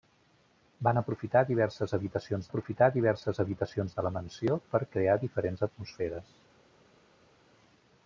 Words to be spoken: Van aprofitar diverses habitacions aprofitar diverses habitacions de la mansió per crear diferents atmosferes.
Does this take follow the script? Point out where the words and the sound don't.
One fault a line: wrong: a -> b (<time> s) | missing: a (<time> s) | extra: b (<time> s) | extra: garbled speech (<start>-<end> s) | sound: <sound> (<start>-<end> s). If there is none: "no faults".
no faults